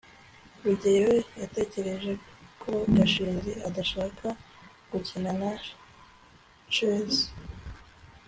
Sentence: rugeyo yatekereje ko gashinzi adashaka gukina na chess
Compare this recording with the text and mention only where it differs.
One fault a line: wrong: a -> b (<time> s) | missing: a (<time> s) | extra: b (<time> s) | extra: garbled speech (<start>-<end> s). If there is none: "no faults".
no faults